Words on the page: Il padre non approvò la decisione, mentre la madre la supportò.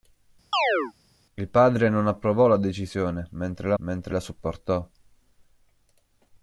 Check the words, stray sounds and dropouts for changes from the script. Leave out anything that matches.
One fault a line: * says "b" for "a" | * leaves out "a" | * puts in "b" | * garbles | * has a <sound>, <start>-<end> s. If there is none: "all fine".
* has a chirp, 0.5-0.9 s
* says "mentre" for "madre"